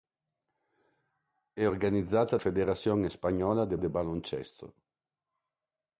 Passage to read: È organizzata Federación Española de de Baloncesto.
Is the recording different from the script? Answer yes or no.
no